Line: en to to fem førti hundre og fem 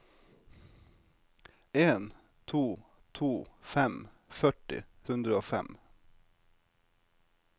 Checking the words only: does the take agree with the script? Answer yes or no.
yes